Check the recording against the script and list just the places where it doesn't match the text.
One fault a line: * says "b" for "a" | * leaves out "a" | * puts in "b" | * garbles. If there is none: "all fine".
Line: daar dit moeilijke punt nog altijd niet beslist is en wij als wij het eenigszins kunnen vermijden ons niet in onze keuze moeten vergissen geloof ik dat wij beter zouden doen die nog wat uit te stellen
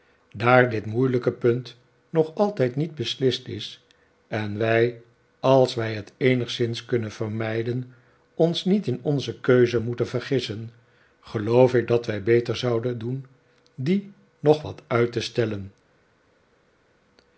all fine